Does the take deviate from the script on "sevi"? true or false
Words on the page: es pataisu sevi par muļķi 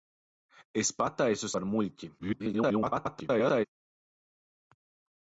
true